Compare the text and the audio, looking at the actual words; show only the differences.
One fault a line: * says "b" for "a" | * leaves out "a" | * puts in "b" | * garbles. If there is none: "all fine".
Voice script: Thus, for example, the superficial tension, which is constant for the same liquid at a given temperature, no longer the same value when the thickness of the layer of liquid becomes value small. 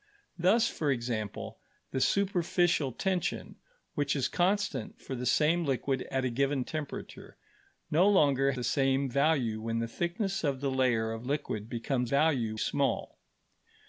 all fine